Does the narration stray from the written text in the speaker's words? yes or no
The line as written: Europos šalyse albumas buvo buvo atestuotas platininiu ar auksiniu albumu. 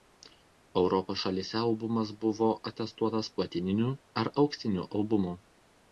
yes